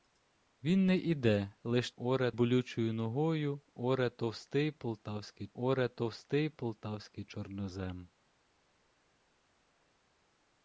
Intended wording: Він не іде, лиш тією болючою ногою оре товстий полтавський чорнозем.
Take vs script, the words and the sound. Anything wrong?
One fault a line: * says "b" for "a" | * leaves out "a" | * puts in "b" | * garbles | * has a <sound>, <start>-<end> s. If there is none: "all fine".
* says "оре" for "тією"
* puts in "оре товстий полтавський"